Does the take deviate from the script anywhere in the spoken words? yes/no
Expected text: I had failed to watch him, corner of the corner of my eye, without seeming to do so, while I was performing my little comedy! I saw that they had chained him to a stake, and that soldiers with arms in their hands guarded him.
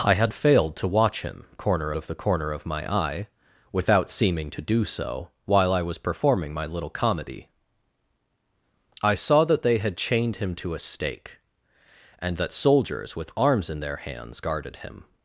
no